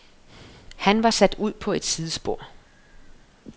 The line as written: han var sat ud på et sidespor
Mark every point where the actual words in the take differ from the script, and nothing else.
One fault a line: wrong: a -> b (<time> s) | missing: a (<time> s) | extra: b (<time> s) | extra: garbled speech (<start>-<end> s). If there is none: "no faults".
no faults